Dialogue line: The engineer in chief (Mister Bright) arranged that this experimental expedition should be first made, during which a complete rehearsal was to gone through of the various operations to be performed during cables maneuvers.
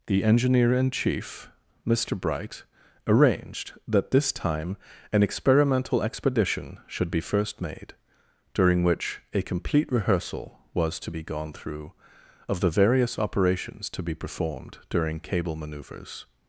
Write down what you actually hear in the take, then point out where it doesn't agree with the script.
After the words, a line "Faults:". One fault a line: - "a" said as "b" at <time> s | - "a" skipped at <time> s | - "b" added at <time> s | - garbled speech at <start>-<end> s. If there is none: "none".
The engineer in chief (Mister Bright) arranged that this time an experimental expedition should be first made, during which a complete rehearsal was to be gone through of the various operations to be performed during cable maneuvers.
Faults:
- "time an" added at 4.3 s
- "be" added at 11.1 s
- "cables" said as "cable" at 15.2 s